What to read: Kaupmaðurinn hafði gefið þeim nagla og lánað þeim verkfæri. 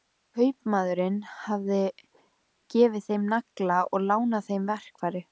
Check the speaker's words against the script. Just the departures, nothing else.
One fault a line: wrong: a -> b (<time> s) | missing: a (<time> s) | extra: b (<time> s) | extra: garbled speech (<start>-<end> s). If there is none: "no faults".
no faults